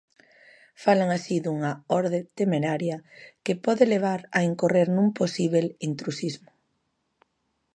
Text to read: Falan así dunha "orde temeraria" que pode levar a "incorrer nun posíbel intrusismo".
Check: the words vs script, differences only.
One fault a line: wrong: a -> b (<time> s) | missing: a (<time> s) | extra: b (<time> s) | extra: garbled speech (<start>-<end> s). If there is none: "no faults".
no faults